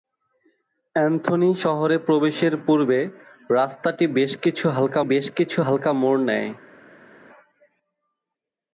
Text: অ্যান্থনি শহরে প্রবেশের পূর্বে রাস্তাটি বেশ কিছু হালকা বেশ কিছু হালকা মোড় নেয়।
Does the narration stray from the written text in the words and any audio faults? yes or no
no